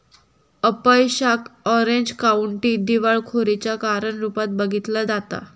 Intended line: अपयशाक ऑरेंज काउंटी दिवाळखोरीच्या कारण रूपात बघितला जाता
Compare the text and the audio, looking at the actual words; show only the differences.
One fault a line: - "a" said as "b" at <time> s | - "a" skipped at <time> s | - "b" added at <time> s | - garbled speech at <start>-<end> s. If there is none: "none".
none